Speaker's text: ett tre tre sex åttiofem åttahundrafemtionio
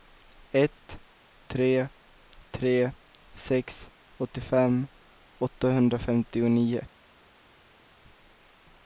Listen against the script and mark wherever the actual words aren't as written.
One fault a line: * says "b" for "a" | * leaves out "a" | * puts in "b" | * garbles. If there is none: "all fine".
all fine